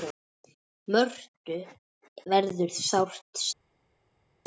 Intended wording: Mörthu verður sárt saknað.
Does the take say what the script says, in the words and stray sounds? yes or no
yes